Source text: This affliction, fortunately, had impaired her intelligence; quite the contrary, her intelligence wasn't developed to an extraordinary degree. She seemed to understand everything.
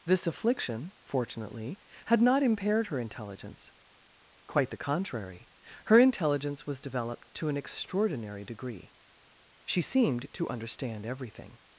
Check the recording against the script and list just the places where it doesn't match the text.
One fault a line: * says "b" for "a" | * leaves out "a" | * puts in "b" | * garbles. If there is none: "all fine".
* puts in "not"
* says "was" for "wasn't"